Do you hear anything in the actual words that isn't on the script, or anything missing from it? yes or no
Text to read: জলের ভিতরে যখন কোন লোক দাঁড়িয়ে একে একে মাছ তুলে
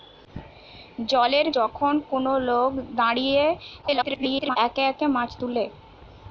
yes